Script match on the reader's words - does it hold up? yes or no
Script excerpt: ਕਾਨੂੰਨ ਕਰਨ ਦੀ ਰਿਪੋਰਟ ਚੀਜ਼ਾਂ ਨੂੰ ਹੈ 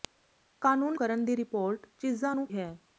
yes